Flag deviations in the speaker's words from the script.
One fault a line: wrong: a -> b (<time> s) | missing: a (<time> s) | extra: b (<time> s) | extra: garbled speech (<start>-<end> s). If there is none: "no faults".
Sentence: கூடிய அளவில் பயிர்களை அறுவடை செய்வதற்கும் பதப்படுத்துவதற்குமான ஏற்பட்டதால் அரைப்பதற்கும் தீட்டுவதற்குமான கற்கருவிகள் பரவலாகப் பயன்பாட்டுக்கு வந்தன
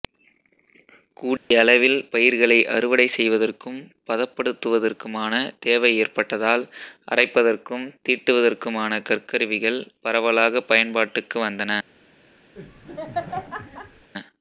extra: தேவை (5.6 s)